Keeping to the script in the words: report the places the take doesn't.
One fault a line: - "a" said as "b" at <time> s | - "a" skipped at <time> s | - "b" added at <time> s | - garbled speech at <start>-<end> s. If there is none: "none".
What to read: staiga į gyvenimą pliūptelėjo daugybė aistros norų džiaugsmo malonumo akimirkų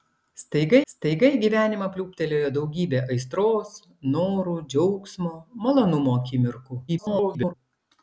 - "staiga" added at 0.9 s
- garbled speech at 6.9-7.5 s